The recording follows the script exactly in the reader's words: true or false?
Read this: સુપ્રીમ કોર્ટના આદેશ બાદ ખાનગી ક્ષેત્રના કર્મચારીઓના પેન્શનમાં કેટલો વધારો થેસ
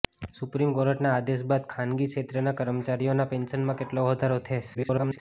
false